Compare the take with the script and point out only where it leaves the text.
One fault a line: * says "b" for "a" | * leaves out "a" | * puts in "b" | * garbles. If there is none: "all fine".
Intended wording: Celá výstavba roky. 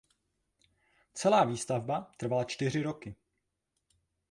* puts in "trvala čtyři"